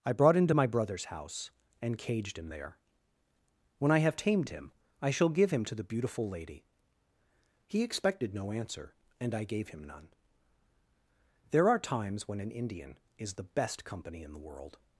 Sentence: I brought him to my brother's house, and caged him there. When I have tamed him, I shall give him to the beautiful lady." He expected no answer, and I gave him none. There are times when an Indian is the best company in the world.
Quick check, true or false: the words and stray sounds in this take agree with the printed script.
true